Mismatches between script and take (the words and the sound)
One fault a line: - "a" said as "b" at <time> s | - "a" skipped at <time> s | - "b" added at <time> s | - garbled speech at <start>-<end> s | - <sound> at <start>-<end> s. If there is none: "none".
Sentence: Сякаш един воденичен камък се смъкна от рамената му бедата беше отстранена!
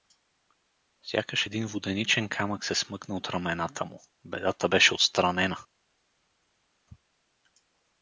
none